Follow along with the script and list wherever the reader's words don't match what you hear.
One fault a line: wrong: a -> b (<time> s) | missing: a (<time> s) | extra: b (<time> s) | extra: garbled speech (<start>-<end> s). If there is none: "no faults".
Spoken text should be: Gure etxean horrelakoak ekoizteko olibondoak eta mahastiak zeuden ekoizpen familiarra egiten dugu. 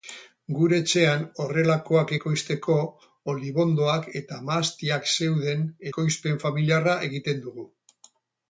no faults